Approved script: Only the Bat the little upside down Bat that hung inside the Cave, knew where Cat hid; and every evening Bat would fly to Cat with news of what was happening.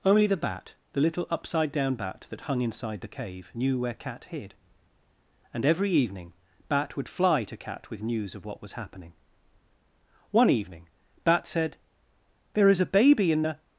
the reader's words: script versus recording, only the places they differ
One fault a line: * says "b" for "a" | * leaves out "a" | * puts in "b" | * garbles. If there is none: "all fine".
* puts in "One evening Bat said There is a Baby in the"